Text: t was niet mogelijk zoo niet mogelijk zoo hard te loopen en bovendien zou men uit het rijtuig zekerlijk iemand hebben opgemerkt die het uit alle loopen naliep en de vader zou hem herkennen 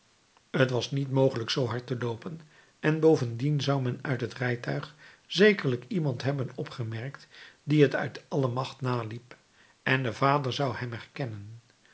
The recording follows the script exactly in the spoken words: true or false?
false